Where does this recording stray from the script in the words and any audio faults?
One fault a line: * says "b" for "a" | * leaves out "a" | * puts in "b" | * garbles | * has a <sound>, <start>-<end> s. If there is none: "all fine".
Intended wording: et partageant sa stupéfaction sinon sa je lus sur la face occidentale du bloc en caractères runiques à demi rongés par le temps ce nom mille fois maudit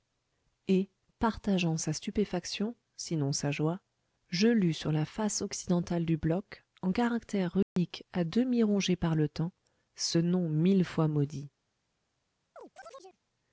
* puts in "joie"
* has a dropout, 7.6-7.8 s
* has a chirp, 12.6-13.2 s